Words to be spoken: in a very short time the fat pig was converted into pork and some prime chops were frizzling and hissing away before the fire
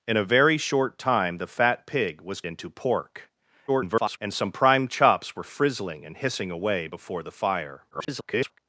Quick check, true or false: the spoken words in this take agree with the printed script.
false